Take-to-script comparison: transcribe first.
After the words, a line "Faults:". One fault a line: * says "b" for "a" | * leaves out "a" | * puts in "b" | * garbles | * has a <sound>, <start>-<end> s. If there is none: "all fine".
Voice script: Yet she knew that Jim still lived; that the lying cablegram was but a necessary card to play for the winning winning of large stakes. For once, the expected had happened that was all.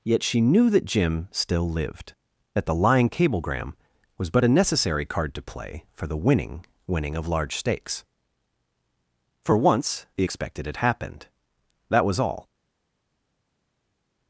Yet she knew that Jim still lived; that the lying cablegram was but a necessary card to play for the winning winning of large stakes. For once, the expected had happened that was all.
Faults:
all fine